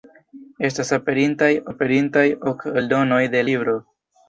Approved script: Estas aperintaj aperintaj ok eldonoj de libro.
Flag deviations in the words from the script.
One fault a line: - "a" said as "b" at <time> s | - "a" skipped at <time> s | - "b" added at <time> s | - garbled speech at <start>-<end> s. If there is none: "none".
none